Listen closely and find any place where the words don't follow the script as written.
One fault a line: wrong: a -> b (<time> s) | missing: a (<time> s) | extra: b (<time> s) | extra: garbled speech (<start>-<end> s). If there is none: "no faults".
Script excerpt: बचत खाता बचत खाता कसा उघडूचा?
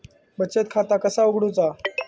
missing: बचत खाता (1.0 s)